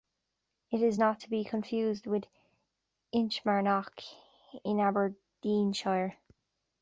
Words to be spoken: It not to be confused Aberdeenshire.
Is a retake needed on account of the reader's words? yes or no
yes